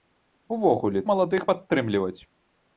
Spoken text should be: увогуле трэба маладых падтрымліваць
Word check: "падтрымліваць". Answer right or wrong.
right